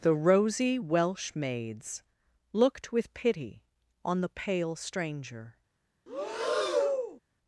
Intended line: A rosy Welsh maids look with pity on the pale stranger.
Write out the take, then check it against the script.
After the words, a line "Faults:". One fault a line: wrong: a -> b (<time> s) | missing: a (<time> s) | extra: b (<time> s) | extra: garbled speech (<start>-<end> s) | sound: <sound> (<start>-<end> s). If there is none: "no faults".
The rosy Welsh maids looked with pity on the pale stranger.
Faults:
wrong: A -> The (0.0 s)
wrong: look -> looked (2.5 s)
sound: breath (6.1-7.2 s)